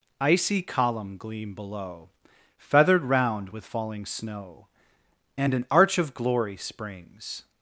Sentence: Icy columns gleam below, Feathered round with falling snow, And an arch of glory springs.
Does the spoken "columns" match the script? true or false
false